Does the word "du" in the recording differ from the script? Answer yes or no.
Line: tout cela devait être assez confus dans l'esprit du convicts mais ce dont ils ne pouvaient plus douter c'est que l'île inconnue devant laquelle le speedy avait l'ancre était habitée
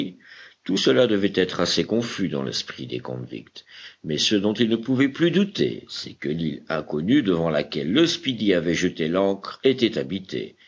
yes